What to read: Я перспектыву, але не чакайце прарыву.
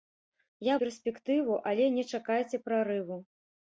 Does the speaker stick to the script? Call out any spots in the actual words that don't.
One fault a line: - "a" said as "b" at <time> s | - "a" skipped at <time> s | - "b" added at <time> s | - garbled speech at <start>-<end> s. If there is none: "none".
none